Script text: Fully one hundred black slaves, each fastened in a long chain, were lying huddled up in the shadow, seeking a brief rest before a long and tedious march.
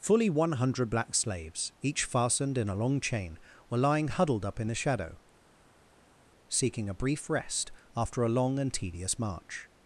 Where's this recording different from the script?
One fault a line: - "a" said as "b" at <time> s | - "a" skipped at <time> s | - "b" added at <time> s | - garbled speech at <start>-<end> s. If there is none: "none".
- "before" said as "after" at 7.9 s